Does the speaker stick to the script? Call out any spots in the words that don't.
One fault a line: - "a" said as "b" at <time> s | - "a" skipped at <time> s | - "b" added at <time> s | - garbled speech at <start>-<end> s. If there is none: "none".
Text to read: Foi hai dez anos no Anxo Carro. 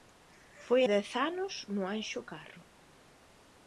- "hai" skipped at 0.8 s